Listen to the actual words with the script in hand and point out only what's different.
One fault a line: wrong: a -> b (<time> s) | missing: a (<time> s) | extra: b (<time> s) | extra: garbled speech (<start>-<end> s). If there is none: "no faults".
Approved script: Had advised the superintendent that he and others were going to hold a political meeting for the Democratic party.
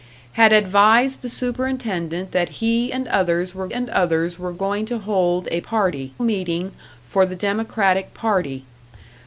extra: and others were (3.7 s)
wrong: political -> party (5.6 s)